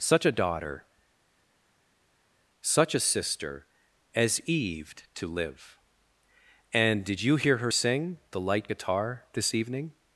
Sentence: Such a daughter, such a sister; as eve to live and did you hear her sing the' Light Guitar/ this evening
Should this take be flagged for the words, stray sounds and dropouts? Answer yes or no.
no